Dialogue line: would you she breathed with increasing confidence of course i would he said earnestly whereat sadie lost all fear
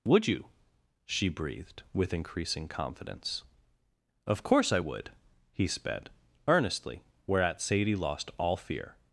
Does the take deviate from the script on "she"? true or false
false